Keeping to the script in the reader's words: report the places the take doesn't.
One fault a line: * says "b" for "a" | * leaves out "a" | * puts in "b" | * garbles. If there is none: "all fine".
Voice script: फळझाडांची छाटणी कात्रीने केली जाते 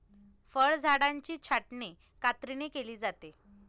all fine